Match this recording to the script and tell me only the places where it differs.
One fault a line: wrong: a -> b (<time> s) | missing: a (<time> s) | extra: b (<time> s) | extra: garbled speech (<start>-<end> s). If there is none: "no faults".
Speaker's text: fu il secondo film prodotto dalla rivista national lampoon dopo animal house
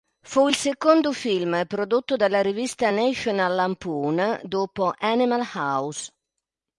no faults